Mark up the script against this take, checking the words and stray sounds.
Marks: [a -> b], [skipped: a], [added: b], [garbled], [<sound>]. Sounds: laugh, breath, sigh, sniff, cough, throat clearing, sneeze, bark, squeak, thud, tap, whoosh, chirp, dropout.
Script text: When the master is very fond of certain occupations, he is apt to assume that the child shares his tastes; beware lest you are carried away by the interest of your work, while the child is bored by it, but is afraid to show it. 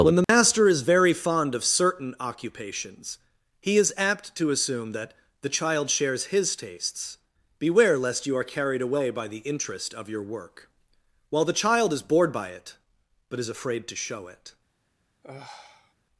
When the [dropout] master is very fond of certain occupations, he is apt to assume that the child shares his tastes; beware lest you are carried away by the interest of your work, while the child is bored by it, but is afraid to show it. [sigh]